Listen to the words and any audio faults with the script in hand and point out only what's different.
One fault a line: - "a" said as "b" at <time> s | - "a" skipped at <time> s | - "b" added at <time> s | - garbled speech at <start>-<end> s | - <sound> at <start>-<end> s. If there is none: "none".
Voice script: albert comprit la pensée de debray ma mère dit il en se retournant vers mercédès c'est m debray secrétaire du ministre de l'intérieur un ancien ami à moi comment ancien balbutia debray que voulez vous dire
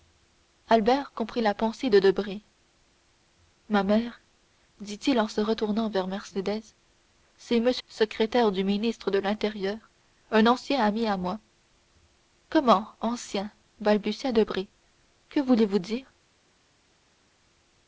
- "debray" skipped at 7.7 s